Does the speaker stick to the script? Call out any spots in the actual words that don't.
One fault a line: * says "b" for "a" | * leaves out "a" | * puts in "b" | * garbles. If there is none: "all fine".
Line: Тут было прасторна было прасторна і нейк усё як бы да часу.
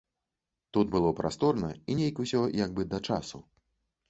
* leaves out "было прасторна"